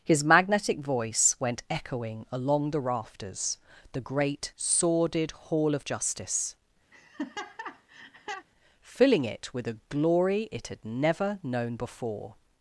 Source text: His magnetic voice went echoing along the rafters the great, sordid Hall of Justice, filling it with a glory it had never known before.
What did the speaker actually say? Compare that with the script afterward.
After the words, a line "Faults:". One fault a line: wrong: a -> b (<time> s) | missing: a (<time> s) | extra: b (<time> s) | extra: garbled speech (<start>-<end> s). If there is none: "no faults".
His magnetic voice went echoing along the rafters the great, sordid Hall of Justice, filling it with a glory it had never known before.
Faults:
no faults